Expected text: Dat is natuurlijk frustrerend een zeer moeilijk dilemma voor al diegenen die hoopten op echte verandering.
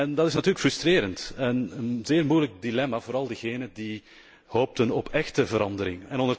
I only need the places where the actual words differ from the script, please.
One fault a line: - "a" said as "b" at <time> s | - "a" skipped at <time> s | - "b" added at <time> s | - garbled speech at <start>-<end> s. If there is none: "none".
- "en" added at 1.4 s